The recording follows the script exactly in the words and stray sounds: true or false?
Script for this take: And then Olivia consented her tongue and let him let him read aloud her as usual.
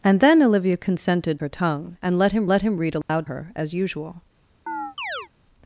false